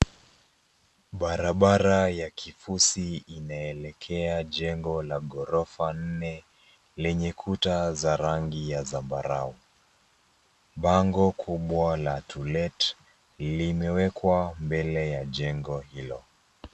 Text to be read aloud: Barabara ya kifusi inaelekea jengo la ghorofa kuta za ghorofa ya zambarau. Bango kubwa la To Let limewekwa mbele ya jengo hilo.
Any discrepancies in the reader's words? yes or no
yes